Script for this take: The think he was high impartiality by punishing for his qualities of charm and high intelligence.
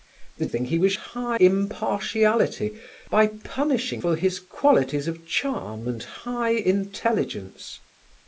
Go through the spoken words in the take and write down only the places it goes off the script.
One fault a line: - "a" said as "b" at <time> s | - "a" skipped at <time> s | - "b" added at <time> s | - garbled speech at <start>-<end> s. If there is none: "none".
none